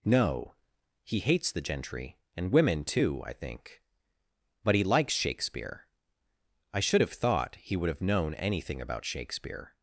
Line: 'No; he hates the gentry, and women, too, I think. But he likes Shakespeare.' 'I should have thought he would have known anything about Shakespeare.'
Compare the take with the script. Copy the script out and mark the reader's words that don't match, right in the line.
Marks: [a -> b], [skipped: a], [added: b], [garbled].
'No; he hates the gentry, and women, too, I think. But he likes Shakespeare.' 'I should have thought he would have known anything about Shakespeare.'